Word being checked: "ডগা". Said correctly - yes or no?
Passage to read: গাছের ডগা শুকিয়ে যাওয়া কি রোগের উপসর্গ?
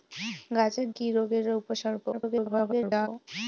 no